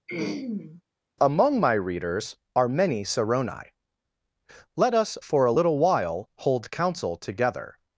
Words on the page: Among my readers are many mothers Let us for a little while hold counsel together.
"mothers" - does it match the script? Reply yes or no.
no